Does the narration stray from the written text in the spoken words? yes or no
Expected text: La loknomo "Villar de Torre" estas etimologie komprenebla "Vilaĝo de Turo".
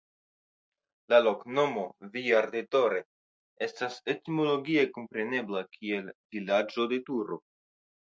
yes